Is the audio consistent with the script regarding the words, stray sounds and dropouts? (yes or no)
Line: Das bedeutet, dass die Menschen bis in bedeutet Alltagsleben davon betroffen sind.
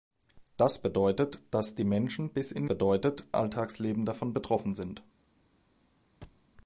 no